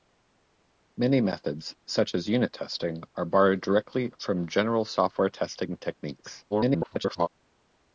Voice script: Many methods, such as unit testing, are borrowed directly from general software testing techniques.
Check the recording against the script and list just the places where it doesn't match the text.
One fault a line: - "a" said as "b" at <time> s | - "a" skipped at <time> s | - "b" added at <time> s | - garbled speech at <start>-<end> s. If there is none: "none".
- garbled speech at 6.5-7.3 s